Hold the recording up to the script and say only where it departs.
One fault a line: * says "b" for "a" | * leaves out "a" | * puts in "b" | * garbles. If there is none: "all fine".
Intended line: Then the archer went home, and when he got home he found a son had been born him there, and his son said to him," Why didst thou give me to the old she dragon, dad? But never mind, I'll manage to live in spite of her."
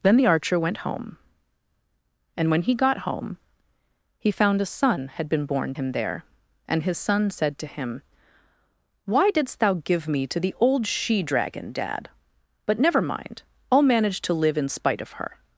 all fine